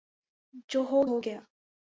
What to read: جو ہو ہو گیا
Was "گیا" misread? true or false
false